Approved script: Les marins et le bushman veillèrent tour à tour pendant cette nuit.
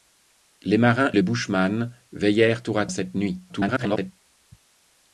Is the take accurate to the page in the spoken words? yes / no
no